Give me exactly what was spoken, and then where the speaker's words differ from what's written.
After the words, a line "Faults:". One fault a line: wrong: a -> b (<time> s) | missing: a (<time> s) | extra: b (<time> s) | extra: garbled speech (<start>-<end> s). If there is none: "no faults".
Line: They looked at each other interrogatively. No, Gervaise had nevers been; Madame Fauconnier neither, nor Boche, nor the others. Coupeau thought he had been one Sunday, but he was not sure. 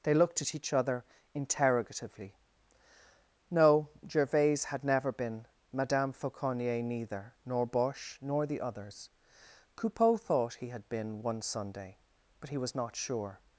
They looked at each other interrogatively. No, Gervaise had never been; Madame Fauconnier neither, nor Boche, nor the others. Coupeau thought he had been one Sunday, but he was not sure.
Faults:
wrong: nevers -> never (4.8 s)